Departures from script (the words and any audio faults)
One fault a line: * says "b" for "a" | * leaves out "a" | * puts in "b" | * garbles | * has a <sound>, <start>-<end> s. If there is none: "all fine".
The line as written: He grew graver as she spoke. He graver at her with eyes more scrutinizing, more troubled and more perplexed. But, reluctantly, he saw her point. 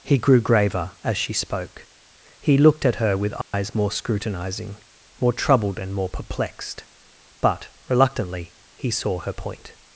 * says "looked" for "graver"
* has a dropout, 3.4-3.5 s